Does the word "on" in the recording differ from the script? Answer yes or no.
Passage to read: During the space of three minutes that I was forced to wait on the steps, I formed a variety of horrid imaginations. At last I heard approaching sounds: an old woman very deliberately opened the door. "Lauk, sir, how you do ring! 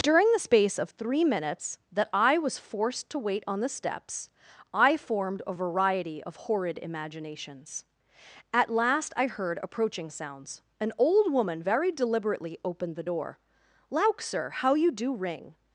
no